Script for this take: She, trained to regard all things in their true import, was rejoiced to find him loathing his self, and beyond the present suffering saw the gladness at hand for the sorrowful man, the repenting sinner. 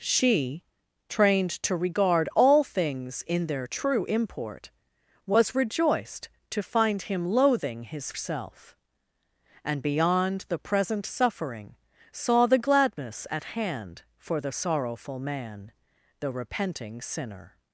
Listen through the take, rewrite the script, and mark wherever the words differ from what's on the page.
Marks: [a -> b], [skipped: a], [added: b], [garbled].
She, trained to regard all things in their true import, was rejoiced to find him loathing his self, and beyond the present suffering saw the gladness at hand for the sorrowful man, the repenting sinner.